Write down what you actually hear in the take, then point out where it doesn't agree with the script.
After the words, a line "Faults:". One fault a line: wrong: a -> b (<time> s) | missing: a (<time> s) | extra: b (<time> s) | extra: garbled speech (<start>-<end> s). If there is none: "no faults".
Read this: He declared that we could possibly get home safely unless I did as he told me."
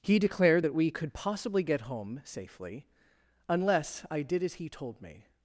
He declared that we could possibly get home safely unless I did as he told me."
Faults:
no faults